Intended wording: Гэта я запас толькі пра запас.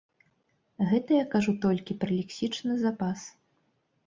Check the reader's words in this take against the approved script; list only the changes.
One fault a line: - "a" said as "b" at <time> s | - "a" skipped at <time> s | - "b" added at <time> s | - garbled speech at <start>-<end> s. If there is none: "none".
- "запас" said as "кажу" at 1.4 s
- "лексічны" added at 2.2 s